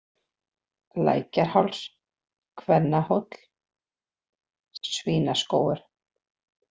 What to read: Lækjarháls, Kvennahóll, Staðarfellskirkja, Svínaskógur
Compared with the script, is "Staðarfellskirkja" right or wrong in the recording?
wrong